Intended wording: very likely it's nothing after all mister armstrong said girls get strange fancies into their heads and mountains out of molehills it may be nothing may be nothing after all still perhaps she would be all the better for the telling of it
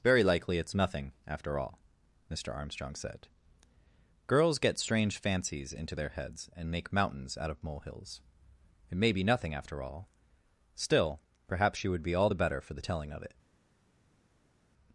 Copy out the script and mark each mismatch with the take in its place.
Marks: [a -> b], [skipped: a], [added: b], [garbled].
very likely it's nothing after all mister armstrong said girls get strange fancies into their heads and [added: make] mountains out of molehills it may be nothing [skipped: may be nothing] after all still perhaps she would be all the better for the telling of it